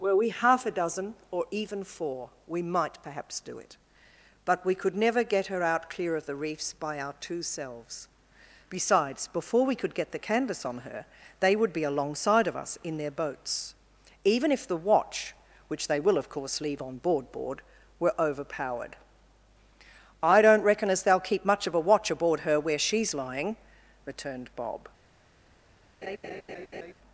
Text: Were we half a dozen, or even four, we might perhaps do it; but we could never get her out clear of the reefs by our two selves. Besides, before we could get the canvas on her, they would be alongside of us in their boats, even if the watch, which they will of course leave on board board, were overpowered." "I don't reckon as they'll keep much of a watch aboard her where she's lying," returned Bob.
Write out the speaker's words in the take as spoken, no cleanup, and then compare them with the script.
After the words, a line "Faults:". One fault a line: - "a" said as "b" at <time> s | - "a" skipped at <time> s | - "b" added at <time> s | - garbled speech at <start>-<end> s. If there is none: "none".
Were we half a dozen, or even four, we might perhaps do it; but we could never get her out clear of the reefs by our two selves. Besides, before we could get the canvas on her, they would be alongside of us in their boats, even if the watch, which they will of course leave on board board, were overpowered." "I don't reckon as they'll keep much of a watch aboard her where she's lying," returned Bob.
Faults:
none